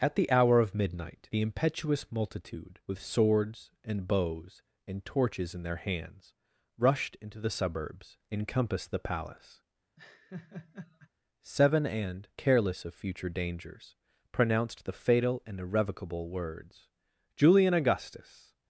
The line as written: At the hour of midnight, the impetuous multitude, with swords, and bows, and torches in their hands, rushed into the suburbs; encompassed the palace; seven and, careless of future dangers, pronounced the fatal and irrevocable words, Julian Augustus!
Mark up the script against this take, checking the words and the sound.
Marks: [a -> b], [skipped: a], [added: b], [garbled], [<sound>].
At the hour of midnight, the impetuous multitude, with swords, and bows, and torches in their hands, rushed into the suburbs; encompassed the palace; [laugh] seven and, careless of future dangers, pronounced the fatal and irrevocable words, Julian Augustus!